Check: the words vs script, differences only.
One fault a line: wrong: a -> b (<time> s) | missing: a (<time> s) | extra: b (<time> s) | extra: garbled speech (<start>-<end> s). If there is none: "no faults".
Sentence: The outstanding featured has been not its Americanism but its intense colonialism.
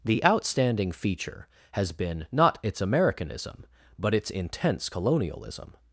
wrong: featured -> feature (0.9 s)